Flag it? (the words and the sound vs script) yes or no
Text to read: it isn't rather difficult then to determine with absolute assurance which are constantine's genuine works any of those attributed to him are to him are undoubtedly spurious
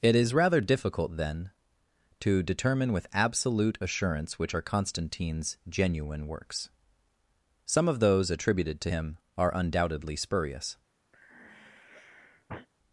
yes